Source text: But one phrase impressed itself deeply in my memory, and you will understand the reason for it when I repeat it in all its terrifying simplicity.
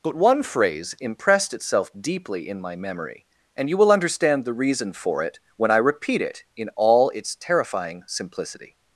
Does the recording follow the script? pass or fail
pass